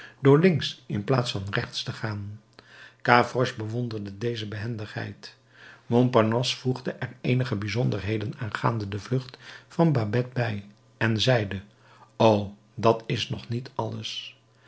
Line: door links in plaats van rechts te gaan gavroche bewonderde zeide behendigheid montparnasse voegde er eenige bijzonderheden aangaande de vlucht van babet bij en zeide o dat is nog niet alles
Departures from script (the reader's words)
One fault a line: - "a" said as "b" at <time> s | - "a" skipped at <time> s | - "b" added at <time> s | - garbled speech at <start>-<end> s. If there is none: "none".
- "zeide" said as "deze" at 4.2 s